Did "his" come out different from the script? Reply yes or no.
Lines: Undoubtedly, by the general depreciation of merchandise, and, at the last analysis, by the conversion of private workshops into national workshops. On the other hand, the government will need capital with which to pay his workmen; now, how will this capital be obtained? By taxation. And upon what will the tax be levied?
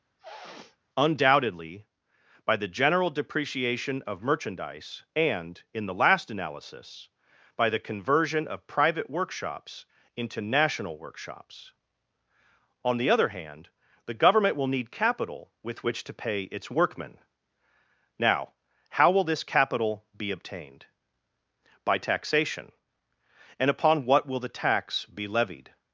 yes